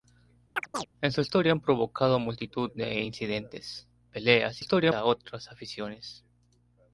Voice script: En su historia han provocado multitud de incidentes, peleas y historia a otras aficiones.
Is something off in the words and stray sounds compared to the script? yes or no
yes